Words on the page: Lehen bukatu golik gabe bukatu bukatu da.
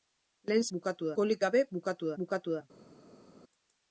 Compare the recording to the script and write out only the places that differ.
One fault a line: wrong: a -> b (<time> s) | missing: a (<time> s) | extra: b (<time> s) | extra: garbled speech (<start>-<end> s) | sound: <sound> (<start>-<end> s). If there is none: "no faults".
no faults